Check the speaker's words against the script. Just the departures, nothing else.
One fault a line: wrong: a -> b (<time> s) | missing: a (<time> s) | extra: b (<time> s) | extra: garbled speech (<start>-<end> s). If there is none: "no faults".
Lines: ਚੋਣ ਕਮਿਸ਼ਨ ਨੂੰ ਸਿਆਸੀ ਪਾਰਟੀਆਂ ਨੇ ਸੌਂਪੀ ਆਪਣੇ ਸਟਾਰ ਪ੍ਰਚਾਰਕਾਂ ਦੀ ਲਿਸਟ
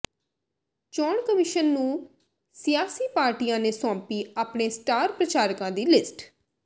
no faults